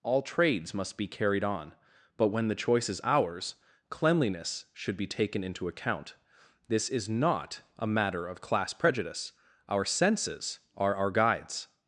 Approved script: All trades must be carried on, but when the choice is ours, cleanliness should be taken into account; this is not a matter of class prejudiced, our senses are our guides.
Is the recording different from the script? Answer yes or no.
yes